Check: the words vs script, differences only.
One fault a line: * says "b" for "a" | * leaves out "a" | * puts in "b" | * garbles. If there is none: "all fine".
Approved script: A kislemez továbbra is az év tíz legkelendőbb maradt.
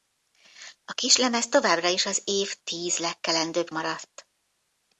all fine